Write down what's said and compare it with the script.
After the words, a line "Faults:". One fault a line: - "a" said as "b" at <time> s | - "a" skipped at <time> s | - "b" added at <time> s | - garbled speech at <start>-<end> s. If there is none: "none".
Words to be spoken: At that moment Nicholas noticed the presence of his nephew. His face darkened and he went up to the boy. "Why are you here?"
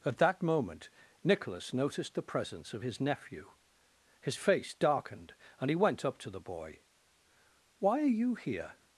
At that moment Nicholas noticed the presence of his nephew. His face darkened and he went up to the boy. "Why are you here?"
Faults:
none